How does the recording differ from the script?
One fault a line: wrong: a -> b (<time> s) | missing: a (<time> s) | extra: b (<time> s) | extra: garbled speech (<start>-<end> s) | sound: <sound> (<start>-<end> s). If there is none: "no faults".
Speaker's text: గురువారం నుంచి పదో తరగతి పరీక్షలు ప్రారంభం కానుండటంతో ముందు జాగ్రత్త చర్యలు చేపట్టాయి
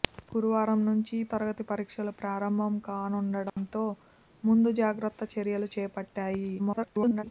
missing: పదో (1.2 s)
sound: dropout (3.5-3.6 s)
extra: garbled speech (6.6-7.2 s)